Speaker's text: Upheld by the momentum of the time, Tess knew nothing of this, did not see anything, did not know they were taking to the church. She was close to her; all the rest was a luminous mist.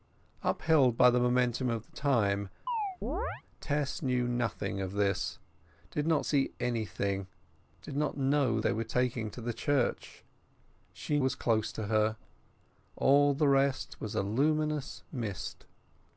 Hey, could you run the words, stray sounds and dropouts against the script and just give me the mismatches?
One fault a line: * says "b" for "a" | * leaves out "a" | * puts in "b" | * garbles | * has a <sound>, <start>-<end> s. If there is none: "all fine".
* has a chirp, 2.7-3.4 s